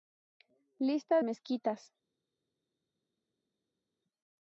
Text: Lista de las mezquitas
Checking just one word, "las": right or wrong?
wrong